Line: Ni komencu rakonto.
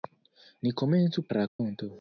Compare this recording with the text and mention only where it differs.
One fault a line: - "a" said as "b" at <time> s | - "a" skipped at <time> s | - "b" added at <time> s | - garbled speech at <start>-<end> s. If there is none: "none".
none